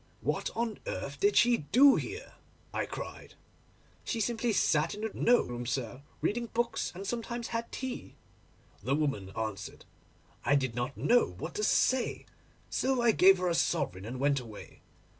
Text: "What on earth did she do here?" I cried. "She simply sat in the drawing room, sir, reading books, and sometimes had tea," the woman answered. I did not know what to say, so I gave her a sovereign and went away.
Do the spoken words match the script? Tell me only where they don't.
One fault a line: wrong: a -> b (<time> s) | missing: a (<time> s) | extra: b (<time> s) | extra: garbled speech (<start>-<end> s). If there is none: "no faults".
wrong: drawing -> know (5.1 s)